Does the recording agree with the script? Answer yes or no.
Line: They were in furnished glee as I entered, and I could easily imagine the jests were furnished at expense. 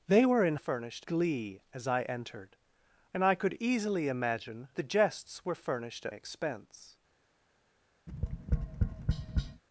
yes